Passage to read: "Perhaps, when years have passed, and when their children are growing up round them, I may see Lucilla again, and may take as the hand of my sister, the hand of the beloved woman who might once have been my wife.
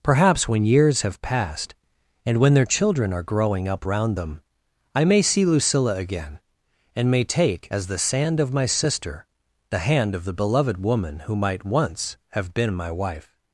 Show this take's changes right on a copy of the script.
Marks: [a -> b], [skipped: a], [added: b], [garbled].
"Perhaps, when years have passed, and when their children are growing up round them, I may see Lucilla again, and may take as the [hand -> sand] of my sister, the hand of the beloved woman who might once have been my wife.